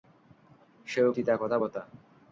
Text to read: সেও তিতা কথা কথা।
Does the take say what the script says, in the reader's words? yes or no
yes